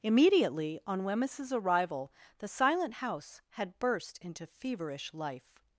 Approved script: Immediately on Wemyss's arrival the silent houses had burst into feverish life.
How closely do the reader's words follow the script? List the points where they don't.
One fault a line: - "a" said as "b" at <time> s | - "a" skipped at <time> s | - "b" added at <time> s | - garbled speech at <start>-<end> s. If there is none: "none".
- "houses" said as "house" at 2.9 s